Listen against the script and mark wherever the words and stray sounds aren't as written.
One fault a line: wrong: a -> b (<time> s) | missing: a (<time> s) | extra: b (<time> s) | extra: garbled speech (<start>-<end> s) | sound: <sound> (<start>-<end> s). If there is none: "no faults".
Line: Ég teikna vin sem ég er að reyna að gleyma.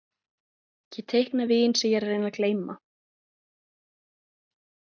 no faults